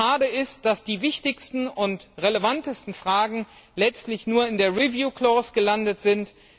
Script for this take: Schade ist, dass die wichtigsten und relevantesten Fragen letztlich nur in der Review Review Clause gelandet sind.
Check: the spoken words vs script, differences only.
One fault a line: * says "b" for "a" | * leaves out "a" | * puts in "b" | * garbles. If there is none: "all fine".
* leaves out "Review"